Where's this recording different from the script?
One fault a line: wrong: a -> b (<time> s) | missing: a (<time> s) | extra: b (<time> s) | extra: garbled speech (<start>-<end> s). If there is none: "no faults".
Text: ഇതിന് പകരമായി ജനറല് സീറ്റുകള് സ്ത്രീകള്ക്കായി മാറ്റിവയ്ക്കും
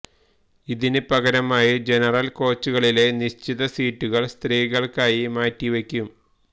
extra: കോച്ചുകളിലെ നിശ്ചിത (2.3 s)